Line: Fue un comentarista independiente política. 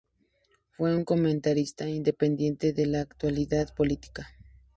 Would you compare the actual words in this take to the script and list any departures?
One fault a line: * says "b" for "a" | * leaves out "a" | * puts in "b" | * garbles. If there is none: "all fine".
* puts in "de la actualidad"